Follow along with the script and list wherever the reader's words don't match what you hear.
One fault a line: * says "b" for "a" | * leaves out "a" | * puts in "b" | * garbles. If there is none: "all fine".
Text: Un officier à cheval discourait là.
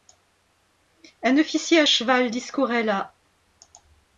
all fine